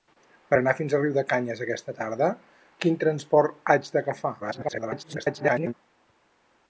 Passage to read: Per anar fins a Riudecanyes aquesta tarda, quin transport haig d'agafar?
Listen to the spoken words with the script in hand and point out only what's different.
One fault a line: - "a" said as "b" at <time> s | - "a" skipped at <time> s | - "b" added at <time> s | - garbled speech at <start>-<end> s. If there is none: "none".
- garbled speech at 4.4-5.7 s